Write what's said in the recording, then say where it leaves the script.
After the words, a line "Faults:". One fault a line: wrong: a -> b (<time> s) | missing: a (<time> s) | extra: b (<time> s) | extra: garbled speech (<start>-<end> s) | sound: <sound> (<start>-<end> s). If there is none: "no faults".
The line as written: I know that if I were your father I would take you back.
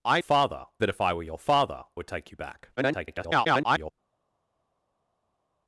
I father that if I were your father would take you back. [garbled]
Faults:
wrong: know -> father (0.2 s)
missing: I (1.8 s)
extra: garbled speech (2.8-3.9 s)